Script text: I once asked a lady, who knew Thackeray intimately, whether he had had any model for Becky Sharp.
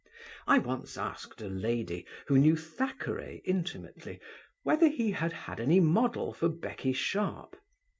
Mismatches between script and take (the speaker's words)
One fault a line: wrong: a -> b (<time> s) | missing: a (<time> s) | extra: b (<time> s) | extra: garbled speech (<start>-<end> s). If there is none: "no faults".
no faults